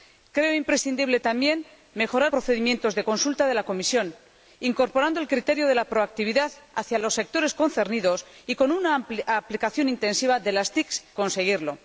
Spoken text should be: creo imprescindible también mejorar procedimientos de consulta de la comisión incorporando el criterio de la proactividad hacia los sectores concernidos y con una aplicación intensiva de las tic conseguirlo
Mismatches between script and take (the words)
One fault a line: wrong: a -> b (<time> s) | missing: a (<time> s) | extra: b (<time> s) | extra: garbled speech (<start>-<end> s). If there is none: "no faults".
no faults